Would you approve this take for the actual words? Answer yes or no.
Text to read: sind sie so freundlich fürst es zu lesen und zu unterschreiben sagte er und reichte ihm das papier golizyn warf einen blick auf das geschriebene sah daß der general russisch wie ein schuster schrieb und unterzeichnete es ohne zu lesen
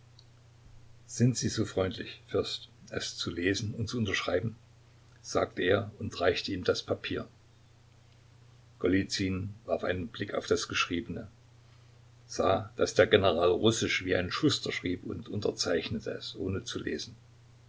yes